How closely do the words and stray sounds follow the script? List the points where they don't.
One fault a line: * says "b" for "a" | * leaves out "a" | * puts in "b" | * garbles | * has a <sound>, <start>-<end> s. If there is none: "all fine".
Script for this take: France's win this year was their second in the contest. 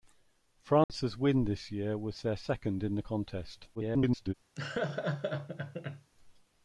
* has a dropout, 0.8-0.9 s
* garbles
* has a laugh, 4.6-6.1 s